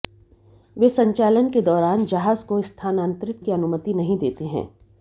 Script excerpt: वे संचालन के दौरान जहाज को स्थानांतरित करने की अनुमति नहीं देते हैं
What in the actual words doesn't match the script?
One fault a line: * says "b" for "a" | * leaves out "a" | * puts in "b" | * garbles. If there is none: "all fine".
* leaves out "करने"